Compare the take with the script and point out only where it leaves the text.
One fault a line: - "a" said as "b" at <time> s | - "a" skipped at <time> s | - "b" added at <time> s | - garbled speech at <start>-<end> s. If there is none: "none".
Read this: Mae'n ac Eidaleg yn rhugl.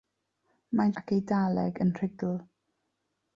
none